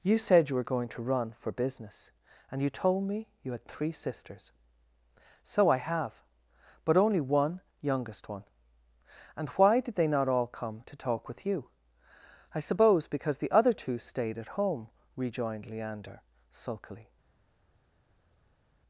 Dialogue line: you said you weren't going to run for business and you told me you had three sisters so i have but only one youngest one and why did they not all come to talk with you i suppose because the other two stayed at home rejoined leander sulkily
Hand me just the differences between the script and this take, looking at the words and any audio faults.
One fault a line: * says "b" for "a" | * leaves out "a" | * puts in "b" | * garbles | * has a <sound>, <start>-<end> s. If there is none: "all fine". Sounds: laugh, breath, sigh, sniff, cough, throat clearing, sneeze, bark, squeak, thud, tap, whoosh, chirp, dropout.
* says "were" for "weren't"